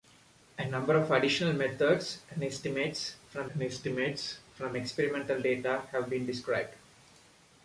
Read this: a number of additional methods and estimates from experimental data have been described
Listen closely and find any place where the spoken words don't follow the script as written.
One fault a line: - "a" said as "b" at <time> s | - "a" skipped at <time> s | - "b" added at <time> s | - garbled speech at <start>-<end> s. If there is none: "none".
- "and estimates from" added at 3.5 s